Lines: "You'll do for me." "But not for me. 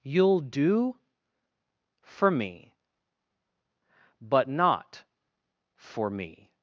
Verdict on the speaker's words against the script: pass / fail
pass